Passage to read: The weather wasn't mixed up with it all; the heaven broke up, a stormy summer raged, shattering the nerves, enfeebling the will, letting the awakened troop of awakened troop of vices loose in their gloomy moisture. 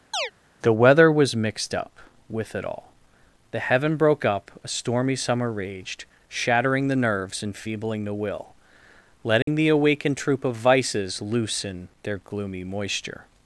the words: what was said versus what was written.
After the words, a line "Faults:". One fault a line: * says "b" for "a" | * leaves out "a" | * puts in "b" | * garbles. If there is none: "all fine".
The weather was mixed up with it all; the heaven broke up, a stormy summer raged, shattering the nerves, enfeebling the will, letting the awakened troop of vices loose in their gloomy moisture.
Faults:
* says "was" for "wasn't"
* leaves out "awakened troop of"